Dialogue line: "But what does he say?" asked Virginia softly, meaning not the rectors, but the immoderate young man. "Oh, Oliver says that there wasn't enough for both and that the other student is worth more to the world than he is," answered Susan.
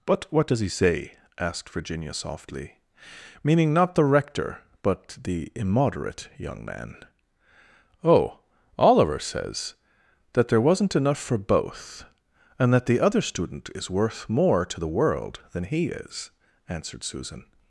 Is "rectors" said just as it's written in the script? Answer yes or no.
no